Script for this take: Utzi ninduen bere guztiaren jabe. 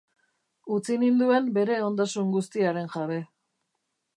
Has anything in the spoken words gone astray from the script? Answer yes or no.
yes